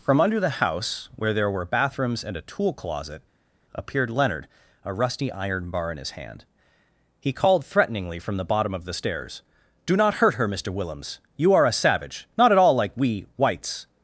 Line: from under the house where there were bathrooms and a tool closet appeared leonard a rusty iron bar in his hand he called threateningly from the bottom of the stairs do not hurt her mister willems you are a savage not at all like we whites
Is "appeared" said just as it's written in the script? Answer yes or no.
yes